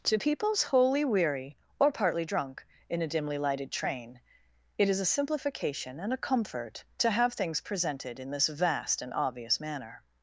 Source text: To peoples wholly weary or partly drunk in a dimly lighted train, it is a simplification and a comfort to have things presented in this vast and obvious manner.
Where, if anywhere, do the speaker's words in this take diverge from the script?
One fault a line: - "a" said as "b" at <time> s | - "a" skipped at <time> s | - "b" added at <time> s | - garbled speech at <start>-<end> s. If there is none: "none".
none